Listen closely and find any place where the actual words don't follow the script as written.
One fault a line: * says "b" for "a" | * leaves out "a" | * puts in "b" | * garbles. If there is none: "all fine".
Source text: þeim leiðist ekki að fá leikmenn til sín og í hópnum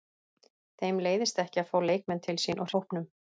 all fine